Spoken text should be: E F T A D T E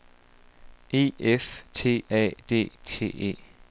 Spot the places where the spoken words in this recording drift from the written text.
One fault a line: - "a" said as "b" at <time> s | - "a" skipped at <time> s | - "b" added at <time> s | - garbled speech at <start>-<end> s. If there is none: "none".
none